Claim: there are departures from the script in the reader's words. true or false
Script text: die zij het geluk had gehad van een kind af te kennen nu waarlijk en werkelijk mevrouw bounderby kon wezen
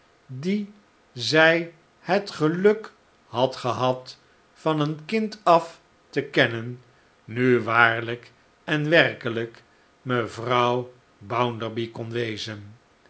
false